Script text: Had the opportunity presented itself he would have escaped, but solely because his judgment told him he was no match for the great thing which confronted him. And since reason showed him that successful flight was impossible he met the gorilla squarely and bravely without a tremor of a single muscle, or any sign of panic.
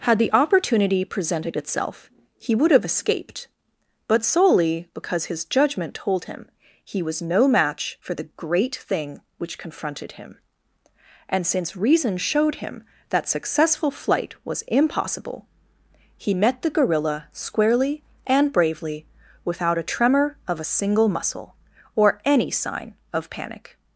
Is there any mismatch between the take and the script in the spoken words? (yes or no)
no